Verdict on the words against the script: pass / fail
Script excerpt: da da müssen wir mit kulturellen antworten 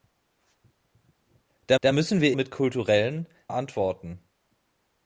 pass